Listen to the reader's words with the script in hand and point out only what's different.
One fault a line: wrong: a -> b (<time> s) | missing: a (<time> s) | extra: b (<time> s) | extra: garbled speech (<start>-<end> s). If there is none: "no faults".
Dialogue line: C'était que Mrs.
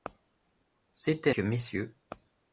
no faults